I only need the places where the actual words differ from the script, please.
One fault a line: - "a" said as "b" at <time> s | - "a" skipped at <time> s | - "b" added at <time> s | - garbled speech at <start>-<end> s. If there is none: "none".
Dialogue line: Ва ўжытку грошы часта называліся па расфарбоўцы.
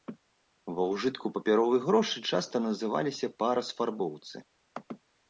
- "папяровыя" added at 1.4 s